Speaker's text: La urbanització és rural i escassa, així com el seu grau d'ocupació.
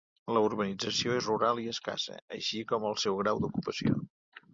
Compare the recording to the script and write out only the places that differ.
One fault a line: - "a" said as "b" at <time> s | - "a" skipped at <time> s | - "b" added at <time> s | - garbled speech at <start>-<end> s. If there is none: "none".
none